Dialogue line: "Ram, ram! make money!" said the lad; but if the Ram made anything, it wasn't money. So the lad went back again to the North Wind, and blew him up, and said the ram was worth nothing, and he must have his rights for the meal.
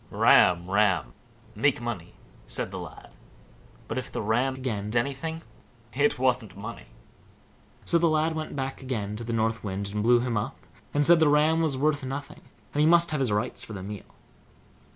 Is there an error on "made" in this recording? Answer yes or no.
yes